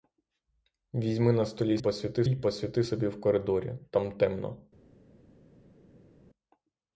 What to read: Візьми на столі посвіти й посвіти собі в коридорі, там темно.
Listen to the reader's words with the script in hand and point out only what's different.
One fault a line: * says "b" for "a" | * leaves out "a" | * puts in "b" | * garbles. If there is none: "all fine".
all fine